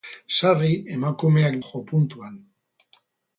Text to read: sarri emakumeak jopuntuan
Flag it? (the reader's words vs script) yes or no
no